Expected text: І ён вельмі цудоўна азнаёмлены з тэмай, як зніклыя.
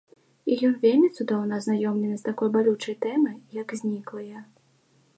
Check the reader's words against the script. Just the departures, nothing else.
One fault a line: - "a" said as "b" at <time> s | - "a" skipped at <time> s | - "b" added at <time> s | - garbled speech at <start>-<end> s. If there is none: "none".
- "такой балючай" added at 2.3 s